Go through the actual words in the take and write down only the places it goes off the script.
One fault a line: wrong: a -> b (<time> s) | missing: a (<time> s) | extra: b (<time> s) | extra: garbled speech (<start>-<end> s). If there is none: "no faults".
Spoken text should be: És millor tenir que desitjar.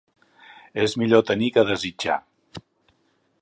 no faults